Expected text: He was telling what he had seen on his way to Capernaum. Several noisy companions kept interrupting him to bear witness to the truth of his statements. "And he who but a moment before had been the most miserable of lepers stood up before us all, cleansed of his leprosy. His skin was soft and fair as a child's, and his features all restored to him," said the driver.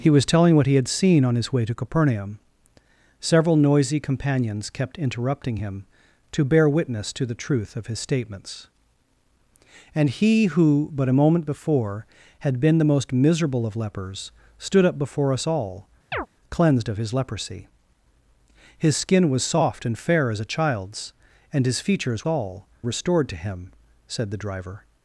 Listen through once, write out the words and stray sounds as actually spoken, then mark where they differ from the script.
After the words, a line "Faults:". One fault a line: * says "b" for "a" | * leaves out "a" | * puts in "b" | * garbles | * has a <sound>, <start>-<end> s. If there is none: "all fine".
He was telling what he had seen on his way to Capernaum. Several noisy companions kept interrupting him to bear witness to the truth of his statements. "And he who but a moment before had been the most miserable of lepers stood up before us all, cleansed of his leprosy. His skin was soft and fair as a child's, and his features all restored to him," said the driver.
Faults:
* has a chirp, 16.1-16.3 s